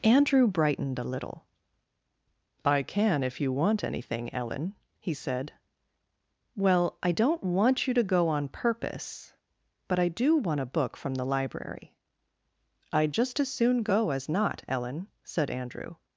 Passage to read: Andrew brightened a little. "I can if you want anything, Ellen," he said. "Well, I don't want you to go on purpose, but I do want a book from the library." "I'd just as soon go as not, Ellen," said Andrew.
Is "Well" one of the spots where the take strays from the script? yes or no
no